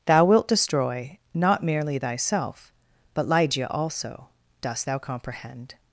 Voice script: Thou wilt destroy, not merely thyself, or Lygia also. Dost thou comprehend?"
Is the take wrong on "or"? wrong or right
wrong